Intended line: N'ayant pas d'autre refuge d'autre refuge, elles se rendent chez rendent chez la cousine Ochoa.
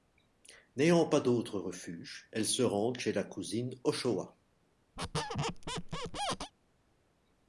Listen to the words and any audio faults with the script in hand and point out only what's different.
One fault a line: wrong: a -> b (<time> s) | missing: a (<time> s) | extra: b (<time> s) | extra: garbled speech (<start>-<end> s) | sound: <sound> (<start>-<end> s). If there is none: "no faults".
missing: d'autre refuge (2.3 s)
missing: rendent chez (3.1 s)
sound: squeak (5.0-6.5 s)